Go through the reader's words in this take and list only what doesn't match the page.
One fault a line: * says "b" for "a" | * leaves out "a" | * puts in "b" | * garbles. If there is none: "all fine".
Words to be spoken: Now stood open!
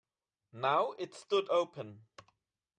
* puts in "it"